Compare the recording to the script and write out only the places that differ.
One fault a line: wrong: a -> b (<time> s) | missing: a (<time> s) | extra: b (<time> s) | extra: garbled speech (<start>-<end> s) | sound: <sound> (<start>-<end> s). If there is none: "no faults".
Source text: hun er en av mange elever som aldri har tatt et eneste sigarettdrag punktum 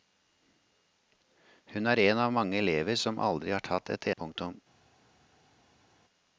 missing: eneste sigarettdrag (4.1 s)